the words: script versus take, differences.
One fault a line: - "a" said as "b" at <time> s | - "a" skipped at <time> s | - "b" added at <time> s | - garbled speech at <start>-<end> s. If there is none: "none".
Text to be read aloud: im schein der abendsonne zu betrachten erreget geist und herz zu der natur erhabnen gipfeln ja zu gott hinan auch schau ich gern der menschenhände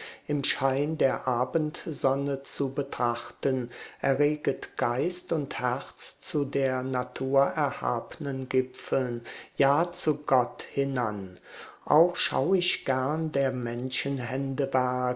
none